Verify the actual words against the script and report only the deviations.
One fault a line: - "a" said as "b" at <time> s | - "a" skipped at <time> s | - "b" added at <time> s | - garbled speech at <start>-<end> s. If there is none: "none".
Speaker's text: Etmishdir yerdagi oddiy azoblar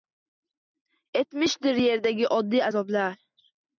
none